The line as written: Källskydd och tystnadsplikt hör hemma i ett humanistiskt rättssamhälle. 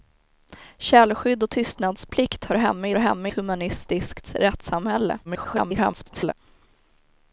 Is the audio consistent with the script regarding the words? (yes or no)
no